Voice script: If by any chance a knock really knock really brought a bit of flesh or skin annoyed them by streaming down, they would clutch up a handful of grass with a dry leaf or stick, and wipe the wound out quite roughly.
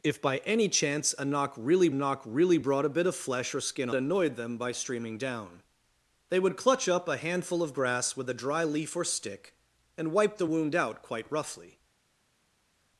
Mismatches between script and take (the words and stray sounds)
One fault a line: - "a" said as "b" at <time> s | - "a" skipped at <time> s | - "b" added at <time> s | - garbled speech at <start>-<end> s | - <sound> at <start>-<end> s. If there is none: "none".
none